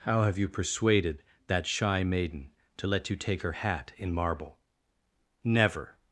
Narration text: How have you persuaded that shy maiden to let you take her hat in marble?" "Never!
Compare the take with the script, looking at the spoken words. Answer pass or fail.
pass